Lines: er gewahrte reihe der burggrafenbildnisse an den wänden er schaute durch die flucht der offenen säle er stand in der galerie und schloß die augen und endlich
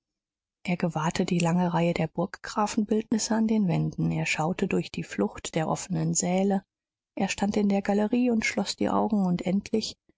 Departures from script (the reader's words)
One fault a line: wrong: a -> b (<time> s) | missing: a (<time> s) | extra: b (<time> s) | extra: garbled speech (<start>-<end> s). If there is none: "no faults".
extra: die lange (1.2 s)